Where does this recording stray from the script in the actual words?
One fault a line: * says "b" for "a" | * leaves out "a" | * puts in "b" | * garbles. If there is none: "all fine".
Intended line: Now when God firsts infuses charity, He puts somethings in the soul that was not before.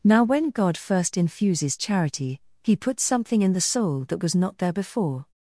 * says "first" for "firsts"
* says "something" for "somethings"
* puts in "there"